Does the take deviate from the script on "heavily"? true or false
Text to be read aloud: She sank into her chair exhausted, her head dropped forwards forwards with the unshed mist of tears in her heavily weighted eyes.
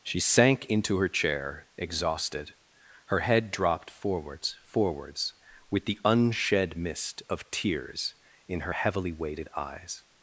false